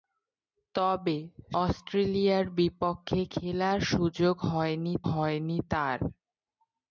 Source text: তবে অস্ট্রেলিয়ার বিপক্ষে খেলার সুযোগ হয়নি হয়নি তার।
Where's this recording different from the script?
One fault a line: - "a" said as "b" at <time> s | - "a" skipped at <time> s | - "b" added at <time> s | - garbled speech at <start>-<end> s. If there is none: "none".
none